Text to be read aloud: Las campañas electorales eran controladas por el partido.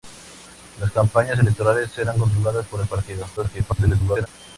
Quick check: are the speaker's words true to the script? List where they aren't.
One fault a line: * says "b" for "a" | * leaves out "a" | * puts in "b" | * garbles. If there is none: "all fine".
* garbles